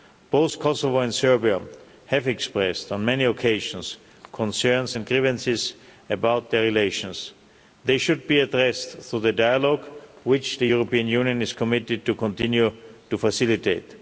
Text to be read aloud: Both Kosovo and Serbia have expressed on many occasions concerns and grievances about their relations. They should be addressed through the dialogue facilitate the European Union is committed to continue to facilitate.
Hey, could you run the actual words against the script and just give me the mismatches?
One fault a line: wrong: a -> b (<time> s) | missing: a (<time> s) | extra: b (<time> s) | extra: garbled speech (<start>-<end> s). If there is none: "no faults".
wrong: facilitate -> which (10.2 s)